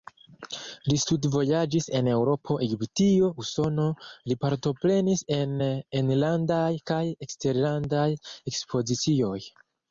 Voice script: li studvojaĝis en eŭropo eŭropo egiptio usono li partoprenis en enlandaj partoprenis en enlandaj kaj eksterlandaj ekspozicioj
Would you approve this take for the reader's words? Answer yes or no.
no